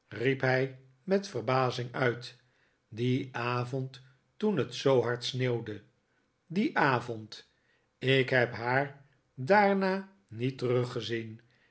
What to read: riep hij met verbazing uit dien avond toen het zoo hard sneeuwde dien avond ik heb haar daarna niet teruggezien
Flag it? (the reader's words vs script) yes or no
no